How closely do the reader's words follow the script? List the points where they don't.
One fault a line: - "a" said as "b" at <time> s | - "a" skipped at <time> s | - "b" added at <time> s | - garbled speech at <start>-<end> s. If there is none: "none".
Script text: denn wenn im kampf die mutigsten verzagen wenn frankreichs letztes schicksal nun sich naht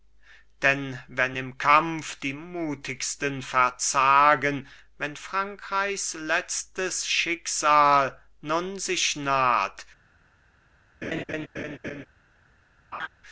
none